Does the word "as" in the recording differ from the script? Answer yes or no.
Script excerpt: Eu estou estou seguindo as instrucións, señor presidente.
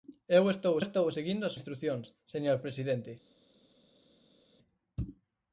no